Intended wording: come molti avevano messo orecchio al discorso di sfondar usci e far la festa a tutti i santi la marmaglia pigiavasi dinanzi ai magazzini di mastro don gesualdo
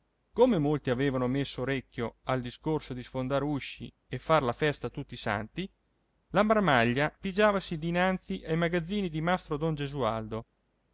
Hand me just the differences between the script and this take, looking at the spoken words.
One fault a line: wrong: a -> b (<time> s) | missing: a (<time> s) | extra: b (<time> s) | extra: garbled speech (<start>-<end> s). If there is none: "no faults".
no faults